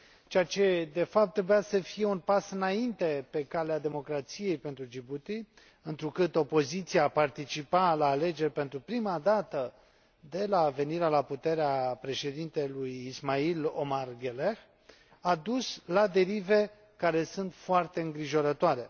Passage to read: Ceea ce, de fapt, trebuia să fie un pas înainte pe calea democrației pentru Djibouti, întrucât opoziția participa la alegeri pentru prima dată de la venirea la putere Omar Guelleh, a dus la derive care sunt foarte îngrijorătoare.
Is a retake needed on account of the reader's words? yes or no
yes